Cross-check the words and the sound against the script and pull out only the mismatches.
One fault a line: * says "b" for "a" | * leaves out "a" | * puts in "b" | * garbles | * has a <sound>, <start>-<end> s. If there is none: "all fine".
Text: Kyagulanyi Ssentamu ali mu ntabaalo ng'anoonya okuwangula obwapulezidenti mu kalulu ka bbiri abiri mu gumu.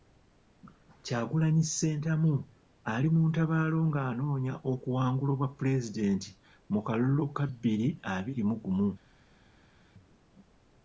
all fine